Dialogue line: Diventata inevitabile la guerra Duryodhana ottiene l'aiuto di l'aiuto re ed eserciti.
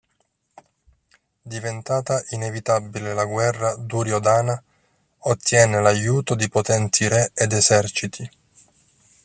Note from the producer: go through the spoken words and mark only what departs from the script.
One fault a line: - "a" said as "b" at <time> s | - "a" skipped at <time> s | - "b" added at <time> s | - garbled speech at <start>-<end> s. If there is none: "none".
- "l'aiuto" said as "potenti" at 6.5 s